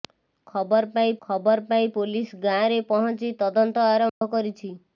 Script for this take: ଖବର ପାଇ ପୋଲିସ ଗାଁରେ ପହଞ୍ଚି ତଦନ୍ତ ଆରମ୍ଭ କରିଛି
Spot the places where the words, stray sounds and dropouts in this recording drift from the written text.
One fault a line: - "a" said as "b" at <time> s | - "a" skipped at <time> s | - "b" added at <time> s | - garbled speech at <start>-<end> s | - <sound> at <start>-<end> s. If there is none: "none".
- "ଖବର ପାଇ" added at 1.2 s
- dropout at 4.1-4.2 s